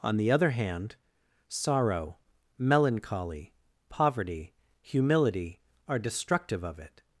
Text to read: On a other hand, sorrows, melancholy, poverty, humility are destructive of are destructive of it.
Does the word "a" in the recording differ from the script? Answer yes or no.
yes